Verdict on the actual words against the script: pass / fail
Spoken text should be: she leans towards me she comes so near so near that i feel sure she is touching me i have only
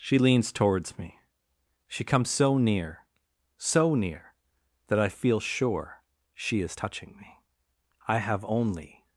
pass